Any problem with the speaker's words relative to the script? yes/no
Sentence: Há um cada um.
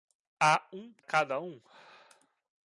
no